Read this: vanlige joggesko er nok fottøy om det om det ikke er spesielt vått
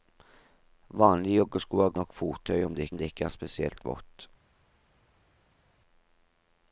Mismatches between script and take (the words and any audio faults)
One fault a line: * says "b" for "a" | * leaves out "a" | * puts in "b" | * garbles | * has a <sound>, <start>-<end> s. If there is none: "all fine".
all fine